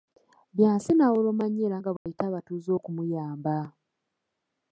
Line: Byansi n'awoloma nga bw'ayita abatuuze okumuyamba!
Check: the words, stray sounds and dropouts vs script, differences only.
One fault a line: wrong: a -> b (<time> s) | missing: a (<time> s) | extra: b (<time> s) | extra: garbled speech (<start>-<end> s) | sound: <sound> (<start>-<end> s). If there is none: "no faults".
extra: nnyo era (1.5 s)
sound: dropout (2.0-2.1 s)